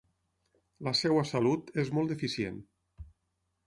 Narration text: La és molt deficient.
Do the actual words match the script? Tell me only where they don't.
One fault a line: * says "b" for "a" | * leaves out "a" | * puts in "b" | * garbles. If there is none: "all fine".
* puts in "seva salut"